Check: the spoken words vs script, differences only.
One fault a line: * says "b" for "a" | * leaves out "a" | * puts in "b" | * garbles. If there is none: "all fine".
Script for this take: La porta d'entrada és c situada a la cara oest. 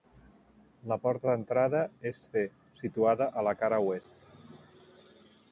all fine